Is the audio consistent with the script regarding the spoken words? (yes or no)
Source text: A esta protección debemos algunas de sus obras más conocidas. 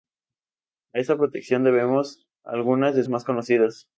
no